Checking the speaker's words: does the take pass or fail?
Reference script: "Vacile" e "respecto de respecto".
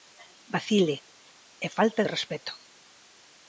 fail